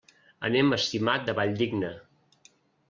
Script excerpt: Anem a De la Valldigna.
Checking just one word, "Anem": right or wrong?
right